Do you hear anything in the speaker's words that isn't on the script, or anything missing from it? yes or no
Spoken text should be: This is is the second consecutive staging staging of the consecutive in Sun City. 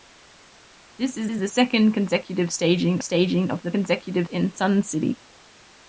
no